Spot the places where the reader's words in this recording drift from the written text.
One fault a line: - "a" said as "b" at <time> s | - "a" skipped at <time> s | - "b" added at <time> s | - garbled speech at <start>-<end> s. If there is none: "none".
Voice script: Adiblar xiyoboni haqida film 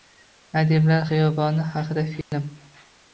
none